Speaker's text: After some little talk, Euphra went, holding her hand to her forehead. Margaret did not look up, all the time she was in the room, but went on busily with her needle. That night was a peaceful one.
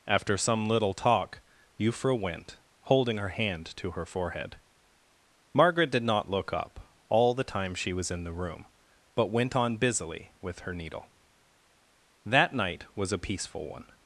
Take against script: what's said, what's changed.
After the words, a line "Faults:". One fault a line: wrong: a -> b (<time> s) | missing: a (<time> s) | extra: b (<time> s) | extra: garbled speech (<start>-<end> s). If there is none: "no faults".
After some little talk, Euphra went, holding her hand to her forehead. Margaret did not look up, all the time she was in the room, but went on busily with her needle. That night was a peaceful one.
Faults:
no faults